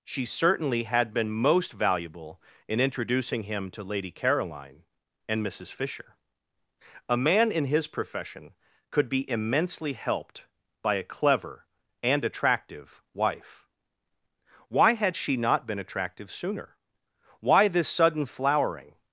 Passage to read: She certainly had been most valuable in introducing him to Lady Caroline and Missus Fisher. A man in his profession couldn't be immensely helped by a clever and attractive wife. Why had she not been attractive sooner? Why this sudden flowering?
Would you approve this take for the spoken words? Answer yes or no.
no